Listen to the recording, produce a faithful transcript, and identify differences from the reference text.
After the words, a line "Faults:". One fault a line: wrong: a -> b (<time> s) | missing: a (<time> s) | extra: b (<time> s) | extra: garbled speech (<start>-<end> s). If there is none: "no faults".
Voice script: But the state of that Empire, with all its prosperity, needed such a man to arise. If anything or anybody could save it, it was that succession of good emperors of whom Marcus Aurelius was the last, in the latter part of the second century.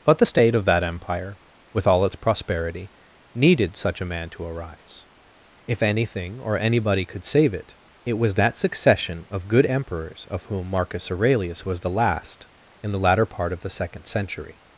But the state of that Empire, with all its prosperity, needed such a man to arise. If anything or anybody could save it, it was that succession of good emperors of whom Marcus Aurelius was the last, in the latter part of the second century.
Faults:
no faults